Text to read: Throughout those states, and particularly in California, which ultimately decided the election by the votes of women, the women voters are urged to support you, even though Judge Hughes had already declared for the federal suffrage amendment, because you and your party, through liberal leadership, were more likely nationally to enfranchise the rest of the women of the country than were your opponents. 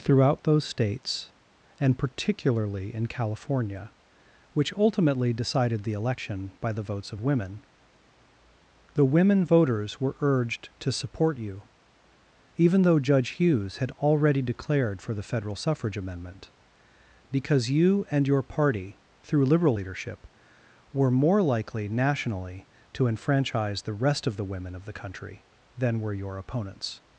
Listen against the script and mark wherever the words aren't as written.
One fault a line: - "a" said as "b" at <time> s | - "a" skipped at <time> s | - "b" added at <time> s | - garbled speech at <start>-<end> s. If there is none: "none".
- "are" said as "were" at 10.0 s